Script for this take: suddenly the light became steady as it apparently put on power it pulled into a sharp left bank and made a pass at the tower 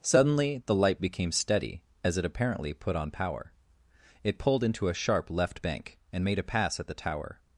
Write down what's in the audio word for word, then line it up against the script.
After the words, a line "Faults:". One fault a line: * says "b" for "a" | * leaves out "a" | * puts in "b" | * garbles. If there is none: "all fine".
suddenly the light became steady as it apparently put on power it pulled into a sharp left bank and made a pass at the tower
Faults:
all fine